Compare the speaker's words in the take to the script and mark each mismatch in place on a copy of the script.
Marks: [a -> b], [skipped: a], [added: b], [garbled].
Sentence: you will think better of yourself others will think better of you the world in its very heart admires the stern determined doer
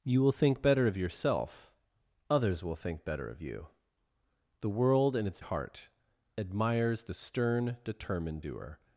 you will think better of yourself others will think better of you the world in its [skipped: very] heart admires the stern determined doer